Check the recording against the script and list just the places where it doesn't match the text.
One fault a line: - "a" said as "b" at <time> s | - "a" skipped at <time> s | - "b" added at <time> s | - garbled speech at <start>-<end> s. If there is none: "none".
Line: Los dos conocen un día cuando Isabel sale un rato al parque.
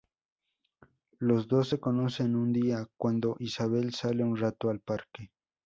- "se" added at 1.7 s